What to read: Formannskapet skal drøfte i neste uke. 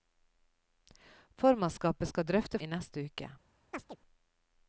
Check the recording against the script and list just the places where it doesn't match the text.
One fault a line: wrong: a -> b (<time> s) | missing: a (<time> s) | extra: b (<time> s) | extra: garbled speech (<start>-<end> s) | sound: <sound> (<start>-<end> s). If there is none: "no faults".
sound: chirp (3.7-4.0 s)